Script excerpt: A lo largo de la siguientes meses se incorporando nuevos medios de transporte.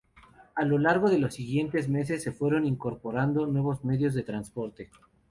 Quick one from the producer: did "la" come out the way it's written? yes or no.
no